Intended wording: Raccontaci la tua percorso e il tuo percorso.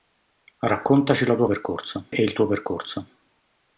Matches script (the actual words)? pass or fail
pass